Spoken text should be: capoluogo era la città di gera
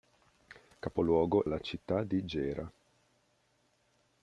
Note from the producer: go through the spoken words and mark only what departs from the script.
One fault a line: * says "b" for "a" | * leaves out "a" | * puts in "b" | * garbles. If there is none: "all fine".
* leaves out "era"